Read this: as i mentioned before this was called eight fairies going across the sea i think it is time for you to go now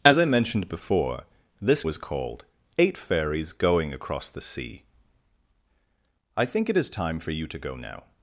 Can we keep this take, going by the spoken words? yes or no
yes